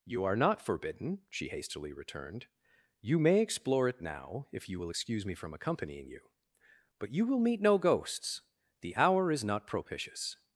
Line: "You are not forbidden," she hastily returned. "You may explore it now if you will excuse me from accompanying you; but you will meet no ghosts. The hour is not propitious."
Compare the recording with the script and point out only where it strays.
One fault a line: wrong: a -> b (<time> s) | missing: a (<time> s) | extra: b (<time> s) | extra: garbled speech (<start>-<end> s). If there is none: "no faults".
no faults